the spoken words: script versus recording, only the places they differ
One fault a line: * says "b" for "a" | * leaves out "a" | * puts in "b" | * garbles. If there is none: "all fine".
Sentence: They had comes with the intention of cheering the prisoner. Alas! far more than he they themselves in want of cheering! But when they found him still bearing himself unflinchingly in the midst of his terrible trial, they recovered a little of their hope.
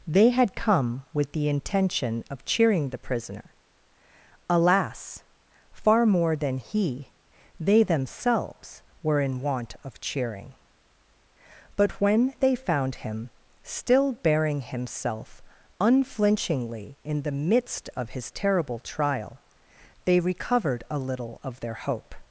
* says "come" for "comes"
* puts in "were"